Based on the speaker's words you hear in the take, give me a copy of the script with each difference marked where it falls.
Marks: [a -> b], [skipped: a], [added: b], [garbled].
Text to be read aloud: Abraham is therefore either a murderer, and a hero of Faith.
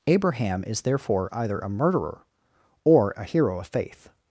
Abraham is therefore either a murderer, [and -> or] a hero of Faith.